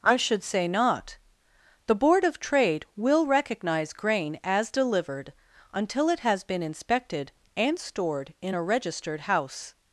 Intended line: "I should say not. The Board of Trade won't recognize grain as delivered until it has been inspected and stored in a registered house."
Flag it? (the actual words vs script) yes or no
yes